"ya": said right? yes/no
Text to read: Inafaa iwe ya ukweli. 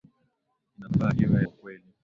no